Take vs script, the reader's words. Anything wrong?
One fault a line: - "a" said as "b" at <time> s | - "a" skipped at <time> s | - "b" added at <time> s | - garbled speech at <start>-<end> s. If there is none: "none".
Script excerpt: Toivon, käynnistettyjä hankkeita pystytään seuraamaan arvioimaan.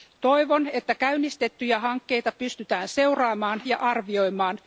- "että" added at 0.7 s
- "ja" added at 3.7 s